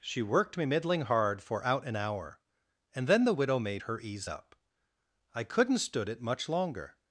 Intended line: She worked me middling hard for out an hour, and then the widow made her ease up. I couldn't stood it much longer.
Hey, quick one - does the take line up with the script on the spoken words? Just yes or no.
yes